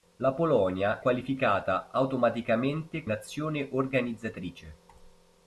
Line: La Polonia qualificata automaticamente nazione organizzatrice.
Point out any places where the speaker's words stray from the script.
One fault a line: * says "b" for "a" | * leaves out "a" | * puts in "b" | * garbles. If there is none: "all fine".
all fine